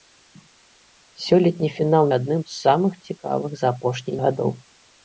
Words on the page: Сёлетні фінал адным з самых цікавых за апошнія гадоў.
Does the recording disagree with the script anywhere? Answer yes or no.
no